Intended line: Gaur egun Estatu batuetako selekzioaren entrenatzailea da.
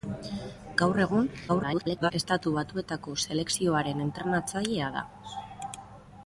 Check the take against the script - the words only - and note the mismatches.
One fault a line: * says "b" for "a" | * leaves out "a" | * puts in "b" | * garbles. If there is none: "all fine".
* garbles